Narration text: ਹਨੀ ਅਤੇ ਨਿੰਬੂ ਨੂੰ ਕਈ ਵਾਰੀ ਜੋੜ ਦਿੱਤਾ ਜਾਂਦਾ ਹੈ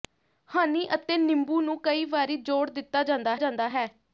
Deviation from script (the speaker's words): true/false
true